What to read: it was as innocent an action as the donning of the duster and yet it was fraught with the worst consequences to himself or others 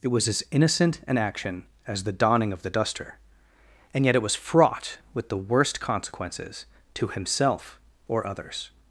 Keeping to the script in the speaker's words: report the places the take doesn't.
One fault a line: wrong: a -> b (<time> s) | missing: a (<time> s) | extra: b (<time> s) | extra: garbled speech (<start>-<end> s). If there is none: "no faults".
no faults